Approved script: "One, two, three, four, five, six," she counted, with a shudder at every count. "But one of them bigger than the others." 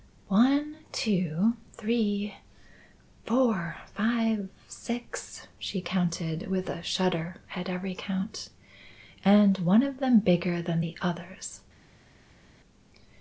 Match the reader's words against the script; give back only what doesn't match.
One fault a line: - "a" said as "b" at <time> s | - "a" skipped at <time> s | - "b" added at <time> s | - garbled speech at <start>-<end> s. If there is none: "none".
- "But" said as "And" at 9.2 s